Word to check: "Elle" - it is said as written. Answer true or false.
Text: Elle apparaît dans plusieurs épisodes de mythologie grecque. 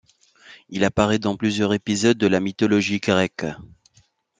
false